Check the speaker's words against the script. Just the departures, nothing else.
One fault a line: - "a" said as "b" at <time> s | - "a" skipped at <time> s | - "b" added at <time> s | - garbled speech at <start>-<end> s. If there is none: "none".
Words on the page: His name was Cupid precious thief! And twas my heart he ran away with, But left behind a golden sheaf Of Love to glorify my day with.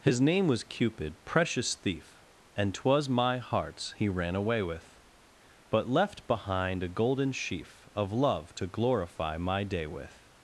- "heart" said as "hearts" at 3.4 s